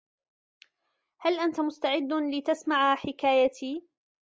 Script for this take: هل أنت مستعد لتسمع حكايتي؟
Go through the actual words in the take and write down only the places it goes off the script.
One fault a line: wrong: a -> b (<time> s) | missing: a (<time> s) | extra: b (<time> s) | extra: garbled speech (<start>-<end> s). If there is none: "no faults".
no faults